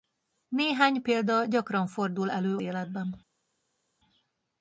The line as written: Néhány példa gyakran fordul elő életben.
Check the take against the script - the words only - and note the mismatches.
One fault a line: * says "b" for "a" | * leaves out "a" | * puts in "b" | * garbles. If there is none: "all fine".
all fine